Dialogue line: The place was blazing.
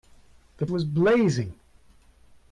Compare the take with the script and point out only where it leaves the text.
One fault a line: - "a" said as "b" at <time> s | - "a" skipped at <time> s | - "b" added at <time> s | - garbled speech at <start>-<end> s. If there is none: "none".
- "place" skipped at 0.7 s